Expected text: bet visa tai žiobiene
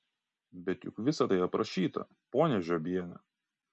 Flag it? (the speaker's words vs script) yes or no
yes